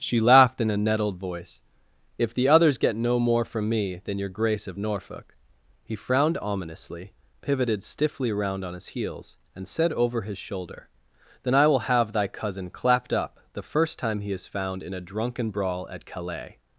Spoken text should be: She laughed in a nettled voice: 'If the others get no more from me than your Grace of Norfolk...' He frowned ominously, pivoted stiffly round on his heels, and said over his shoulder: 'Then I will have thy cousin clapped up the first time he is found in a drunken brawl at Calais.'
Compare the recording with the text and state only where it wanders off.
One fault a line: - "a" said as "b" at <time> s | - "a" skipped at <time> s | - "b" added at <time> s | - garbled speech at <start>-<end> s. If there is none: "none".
none